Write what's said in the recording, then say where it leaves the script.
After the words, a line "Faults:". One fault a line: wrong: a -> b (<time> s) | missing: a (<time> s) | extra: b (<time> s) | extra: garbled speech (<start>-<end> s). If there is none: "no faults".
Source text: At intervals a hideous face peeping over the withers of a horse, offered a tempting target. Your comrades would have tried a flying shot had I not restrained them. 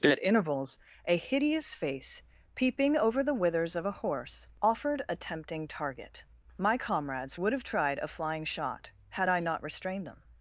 At intervals a hideous face peeping over the withers of a horse, offered a tempting target. My comrades would have tried a flying shot had I not restrained them.
Faults:
wrong: Your -> My (6.6 s)